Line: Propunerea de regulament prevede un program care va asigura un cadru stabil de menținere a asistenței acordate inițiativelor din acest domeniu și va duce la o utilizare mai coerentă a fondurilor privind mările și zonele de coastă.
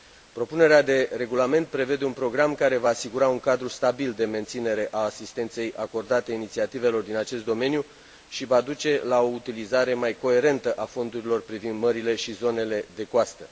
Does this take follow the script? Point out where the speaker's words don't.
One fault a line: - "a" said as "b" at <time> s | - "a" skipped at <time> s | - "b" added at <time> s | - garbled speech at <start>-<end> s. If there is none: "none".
none